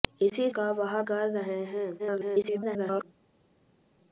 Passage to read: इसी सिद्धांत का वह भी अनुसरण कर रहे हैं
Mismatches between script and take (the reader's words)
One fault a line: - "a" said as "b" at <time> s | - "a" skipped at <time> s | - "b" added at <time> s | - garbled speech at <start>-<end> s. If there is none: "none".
- "सिद्धांत" skipped at 0.5 s
- "भी अनुसरण" skipped at 1.0 s
- garbled speech at 2.0-3.0 s